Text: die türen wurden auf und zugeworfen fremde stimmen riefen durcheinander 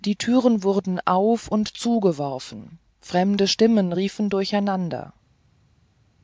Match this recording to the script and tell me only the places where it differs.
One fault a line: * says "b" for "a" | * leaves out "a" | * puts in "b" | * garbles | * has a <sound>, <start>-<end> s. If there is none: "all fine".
all fine